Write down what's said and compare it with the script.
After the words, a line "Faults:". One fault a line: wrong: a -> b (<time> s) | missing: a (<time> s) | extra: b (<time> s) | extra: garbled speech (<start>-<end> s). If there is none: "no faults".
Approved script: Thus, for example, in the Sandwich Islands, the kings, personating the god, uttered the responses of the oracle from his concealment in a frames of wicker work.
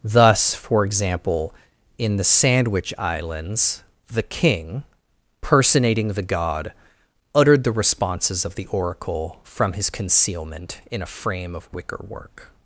Thus, for example, in the Sandwich Islands, the king, personating the god, uttered the responses of the oracle from his concealment in a frame of wicker work.
Faults:
wrong: kings -> king (4.2 s)
wrong: frames -> frame (11.1 s)